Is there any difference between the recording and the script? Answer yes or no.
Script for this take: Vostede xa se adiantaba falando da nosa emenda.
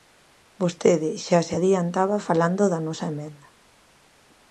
no